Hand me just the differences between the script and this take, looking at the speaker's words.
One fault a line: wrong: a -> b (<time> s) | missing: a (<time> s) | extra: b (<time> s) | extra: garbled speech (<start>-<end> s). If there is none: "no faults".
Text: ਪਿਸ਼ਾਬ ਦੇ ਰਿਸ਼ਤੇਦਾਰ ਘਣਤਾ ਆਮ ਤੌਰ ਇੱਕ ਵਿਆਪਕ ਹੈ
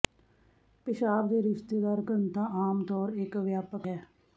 no faults